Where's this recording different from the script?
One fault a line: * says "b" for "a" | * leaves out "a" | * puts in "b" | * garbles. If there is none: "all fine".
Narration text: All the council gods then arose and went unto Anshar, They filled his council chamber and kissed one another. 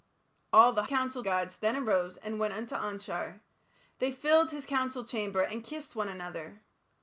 all fine